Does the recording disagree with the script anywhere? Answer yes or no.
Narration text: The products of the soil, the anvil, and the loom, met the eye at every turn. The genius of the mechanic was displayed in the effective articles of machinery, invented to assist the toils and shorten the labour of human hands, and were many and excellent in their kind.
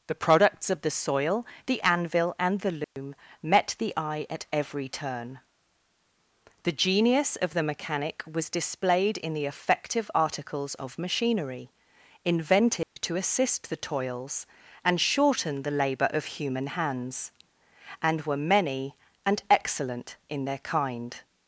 no